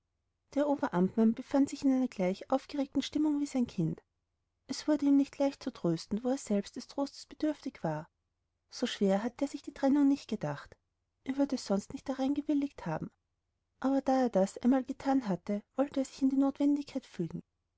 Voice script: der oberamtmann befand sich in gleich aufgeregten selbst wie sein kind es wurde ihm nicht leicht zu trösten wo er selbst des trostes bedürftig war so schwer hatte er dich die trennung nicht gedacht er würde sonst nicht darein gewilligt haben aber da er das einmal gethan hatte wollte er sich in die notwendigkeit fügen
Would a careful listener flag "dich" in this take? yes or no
yes